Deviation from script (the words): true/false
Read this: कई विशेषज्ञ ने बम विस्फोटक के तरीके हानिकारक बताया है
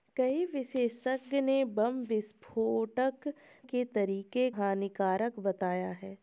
false